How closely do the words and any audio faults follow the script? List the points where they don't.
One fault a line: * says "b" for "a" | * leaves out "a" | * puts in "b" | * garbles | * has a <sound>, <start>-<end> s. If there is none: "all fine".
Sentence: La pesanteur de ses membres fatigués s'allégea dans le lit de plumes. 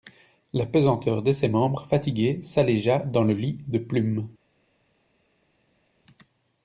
all fine